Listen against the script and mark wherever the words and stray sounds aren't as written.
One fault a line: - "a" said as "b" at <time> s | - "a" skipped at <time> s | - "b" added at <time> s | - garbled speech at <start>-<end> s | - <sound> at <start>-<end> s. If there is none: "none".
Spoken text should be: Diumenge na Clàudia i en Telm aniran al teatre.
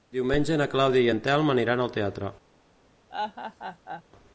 - laugh at 3.1-4.0 s